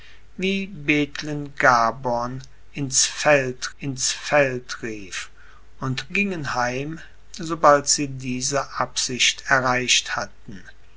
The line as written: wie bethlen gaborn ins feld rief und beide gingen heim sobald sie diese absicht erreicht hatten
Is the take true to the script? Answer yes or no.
no